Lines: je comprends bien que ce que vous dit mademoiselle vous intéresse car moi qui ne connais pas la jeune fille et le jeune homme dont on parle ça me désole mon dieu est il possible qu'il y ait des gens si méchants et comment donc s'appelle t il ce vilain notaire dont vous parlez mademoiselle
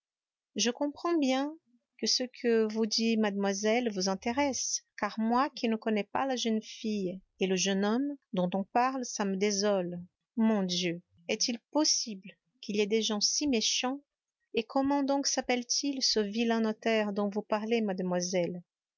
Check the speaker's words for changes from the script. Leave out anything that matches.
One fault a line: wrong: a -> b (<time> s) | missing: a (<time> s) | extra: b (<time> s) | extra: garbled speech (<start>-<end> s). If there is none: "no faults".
no faults